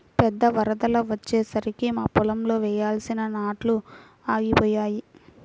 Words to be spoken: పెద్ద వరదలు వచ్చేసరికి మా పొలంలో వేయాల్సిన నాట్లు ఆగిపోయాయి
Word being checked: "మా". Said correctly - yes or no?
yes